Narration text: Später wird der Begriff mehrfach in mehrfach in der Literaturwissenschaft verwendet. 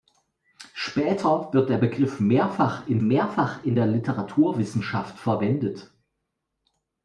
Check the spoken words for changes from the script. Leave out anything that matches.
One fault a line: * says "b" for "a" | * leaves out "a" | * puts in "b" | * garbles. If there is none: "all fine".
all fine